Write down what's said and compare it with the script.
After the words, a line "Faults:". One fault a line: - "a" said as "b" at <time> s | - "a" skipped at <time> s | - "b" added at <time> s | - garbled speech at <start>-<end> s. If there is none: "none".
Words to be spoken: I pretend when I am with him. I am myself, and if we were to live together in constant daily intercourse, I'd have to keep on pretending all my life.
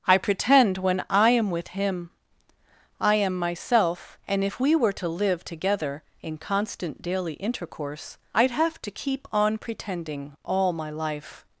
I pretend when I am with him. I am myself, and if we were to live together in constant daily intercourse, I'd have to keep on pretending all my life.
Faults:
none